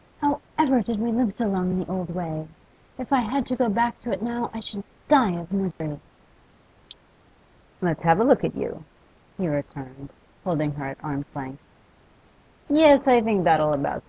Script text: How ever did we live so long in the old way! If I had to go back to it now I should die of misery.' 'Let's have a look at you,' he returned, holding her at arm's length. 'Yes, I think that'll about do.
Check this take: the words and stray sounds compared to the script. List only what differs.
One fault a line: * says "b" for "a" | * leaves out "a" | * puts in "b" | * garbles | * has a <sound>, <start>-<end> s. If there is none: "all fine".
* has a dropout, 5.7-5.8 s